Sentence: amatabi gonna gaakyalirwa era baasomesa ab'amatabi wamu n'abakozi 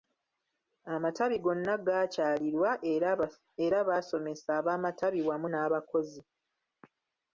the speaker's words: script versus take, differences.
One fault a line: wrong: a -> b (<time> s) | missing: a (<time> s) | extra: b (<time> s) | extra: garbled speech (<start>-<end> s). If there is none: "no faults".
no faults